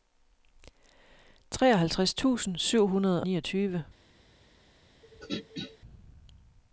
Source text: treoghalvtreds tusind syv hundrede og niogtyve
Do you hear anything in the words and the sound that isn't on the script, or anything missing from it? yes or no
yes